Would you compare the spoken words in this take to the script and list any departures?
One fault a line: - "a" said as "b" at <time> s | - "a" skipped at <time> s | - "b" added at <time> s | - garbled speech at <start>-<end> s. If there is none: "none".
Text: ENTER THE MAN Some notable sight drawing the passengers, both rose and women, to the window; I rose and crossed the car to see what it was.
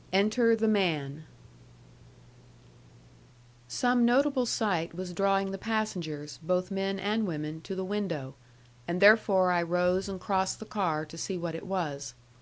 - "was" added at 4.9 s
- "rose" said as "men" at 6.7 s
- "and therefore" added at 8.9 s